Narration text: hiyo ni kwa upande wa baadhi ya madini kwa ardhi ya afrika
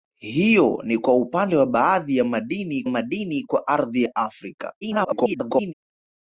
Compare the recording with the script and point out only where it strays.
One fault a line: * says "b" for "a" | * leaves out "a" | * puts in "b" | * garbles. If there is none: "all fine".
* puts in "madini"
* garbles